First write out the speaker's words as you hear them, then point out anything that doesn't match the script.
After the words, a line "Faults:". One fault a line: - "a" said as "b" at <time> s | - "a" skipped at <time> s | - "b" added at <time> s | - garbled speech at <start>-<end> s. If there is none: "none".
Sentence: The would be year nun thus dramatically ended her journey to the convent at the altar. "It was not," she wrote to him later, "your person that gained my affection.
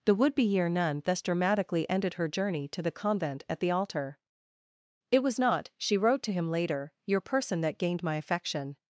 The would be year nun thus dramatically ended her journey to the convent at the altar. "It was not," she wrote to him later, "your person that gained my affection.
Faults:
none